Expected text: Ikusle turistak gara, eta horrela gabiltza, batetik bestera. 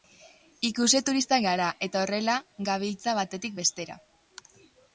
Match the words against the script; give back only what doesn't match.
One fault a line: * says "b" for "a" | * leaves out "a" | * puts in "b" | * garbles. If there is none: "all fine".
all fine